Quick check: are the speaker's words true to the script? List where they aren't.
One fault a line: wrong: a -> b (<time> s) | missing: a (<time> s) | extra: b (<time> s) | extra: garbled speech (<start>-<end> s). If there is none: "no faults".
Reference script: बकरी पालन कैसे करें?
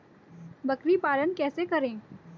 no faults